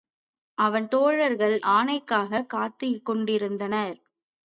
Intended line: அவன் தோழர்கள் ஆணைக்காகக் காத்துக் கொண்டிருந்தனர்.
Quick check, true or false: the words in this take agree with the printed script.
true